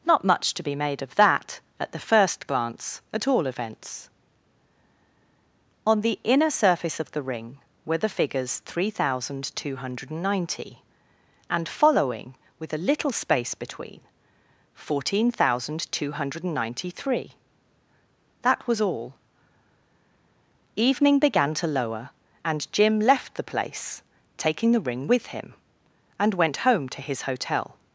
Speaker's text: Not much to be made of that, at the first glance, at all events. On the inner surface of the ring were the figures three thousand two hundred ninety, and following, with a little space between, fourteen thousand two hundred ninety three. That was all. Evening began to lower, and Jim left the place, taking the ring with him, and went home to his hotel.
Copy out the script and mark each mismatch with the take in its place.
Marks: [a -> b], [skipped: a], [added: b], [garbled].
Not much to be made of that, at the first glance, at all events. On the inner surface of the ring were the figures three thousand two hundred ninety, and following, with a little space between, fourteen thousand two hundred ninety three. That was all. Evening began to lower, and Jim left the place, taking the ring with him, and went home to his hotel.